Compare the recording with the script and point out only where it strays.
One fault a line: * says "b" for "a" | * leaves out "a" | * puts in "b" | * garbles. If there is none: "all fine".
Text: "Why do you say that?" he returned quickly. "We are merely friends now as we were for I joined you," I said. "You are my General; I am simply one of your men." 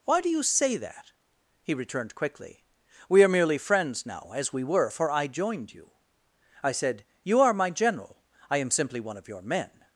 all fine